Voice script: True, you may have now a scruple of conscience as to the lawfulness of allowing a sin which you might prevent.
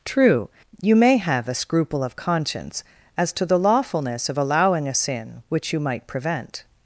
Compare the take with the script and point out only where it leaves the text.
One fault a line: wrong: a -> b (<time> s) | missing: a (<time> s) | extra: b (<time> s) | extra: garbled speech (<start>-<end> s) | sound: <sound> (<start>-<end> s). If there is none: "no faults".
missing: now (1.5 s)